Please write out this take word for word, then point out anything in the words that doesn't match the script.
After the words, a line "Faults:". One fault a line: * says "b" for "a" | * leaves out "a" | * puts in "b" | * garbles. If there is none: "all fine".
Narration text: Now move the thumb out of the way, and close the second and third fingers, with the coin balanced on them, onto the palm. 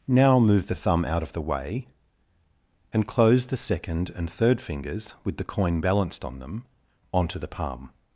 Now move the thumb out of the way, and close the second and third fingers, with the coin balanced on them, onto the palm.
Faults:
all fine